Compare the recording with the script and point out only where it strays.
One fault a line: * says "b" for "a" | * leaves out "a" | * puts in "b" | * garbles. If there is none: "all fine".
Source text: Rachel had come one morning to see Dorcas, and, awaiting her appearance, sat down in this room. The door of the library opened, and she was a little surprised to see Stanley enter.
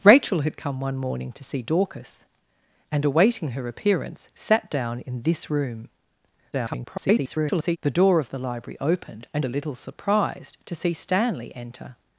* garbles
* leaves out "she was"